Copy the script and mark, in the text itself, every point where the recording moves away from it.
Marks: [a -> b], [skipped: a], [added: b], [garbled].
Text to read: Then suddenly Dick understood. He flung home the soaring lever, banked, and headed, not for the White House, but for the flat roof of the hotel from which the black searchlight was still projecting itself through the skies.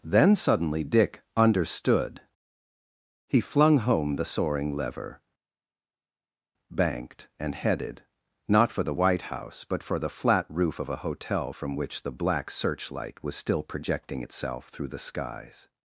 Then suddenly Dick understood. He flung home the soaring lever, banked, and headed, not for the White House, but for the flat roof of [the -> a] hotel from which the black searchlight was still projecting itself through the skies.